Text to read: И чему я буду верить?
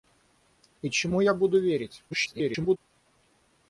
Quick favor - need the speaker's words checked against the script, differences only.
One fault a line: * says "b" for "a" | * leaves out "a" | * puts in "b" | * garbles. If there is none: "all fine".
* garbles